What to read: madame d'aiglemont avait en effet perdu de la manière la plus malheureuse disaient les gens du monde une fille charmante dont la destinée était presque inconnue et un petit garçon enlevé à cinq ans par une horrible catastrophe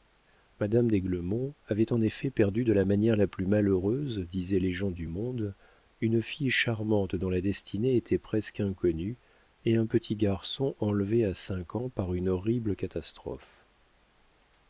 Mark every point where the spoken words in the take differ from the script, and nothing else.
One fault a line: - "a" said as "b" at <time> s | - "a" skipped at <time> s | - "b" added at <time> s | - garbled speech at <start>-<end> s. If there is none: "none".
none